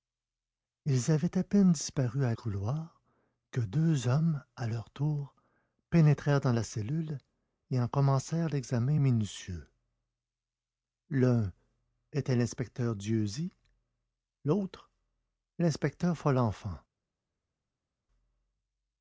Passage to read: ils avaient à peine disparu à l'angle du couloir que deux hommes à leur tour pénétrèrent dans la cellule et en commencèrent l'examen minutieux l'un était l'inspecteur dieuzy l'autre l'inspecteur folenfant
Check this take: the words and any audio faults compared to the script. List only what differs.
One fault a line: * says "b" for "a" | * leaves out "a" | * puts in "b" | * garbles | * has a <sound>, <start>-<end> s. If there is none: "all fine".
* leaves out "l'angle du"